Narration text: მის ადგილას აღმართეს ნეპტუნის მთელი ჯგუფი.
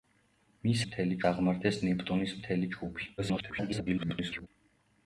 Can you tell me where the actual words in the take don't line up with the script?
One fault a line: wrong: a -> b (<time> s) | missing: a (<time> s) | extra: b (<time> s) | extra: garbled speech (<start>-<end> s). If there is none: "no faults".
wrong: ადგილას -> მთელი (0.8 s)
extra: garbled speech (3.2-4.5 s)